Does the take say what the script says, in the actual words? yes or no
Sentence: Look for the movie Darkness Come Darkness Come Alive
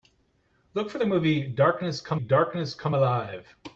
yes